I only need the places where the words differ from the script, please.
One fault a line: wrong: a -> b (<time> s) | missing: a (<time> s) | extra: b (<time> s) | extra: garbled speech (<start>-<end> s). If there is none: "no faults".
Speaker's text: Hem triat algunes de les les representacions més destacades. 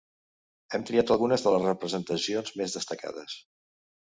missing: les (1.7 s)